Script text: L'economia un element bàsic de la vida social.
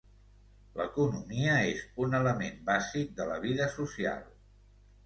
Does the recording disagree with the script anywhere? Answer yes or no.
yes